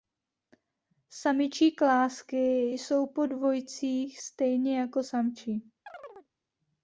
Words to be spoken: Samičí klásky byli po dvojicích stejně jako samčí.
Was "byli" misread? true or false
true